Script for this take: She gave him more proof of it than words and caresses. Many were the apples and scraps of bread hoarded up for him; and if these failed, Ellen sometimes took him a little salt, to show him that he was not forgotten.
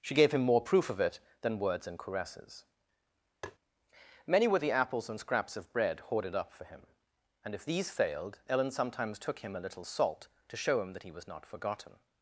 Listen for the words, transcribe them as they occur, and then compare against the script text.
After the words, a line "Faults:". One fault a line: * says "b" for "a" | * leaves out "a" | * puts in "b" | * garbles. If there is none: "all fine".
She gave him more proof of it than words and caresses. Many were the apples and scraps of bread hoarded up for him; and if these failed, Ellen sometimes took him a little salt, to show him that he was not forgotten.
Faults:
all fine